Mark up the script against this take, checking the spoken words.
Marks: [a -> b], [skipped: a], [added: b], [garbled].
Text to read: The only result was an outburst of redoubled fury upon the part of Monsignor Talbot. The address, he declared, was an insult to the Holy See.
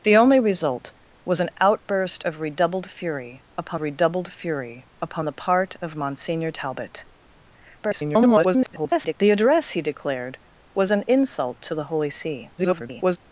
The only result was an outburst of redoubled fury upon [added: redoubled fury upon] the part of Monsignor Talbot. [garbled] The address, he declared, was an insult to the Holy See. [garbled]